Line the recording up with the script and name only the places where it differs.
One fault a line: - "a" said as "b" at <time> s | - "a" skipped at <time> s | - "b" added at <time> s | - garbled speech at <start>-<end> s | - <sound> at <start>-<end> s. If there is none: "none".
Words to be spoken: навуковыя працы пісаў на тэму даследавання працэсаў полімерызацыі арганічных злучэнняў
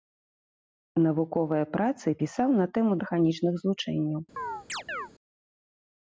- "даследавання працэсаў полімерызацыі" skipped at 2.9 s
- chirp at 4.4-5.1 s